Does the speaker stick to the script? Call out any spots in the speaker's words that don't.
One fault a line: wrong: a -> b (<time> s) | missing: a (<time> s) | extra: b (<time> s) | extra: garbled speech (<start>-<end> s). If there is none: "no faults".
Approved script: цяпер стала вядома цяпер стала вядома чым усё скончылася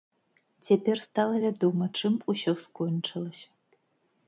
missing: цяпер стала вядома (1.9 s)